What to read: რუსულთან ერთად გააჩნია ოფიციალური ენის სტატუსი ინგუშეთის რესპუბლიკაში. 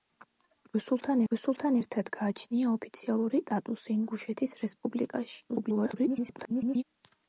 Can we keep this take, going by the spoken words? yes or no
no